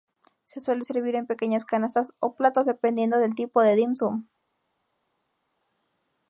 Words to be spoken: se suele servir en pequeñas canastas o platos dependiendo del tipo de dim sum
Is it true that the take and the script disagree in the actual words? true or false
false